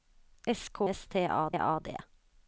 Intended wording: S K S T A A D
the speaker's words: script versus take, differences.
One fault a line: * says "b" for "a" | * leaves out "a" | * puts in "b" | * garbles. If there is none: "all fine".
all fine